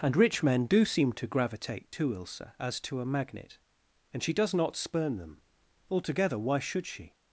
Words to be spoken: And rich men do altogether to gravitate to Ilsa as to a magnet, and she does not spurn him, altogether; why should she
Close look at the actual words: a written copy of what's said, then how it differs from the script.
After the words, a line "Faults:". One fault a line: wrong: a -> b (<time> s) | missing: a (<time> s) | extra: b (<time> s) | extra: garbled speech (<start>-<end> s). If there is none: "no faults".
And rich men do seem to gravitate to Ilsa as to a magnet, and she does not spurn them, altogether; why should she
Faults:
wrong: altogether -> seem (0.8 s)
wrong: him -> them (5.2 s)